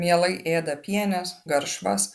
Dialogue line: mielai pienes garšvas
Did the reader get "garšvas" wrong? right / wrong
right